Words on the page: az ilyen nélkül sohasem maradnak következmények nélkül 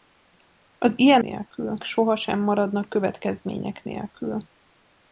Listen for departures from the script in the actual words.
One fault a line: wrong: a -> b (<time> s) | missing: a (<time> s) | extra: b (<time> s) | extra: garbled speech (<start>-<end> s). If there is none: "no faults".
no faults